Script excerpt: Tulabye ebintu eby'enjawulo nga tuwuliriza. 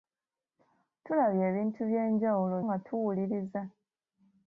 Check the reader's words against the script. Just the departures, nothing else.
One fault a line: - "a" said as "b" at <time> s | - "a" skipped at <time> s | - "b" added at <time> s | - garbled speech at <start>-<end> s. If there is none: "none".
none